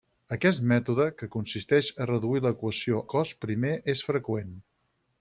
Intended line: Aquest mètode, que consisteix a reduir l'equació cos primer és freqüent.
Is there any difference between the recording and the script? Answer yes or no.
no